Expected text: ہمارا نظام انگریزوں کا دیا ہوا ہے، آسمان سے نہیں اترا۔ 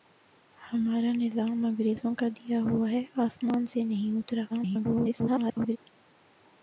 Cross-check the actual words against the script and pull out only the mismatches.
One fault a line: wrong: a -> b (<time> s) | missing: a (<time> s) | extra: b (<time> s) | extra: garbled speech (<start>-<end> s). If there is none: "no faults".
extra: garbled speech (4.5-5.8 s)